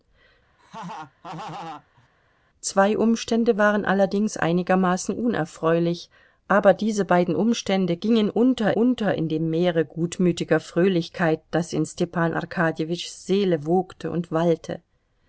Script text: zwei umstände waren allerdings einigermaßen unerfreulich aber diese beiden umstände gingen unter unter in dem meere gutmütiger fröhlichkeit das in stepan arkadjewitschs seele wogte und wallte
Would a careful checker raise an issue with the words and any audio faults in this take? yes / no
yes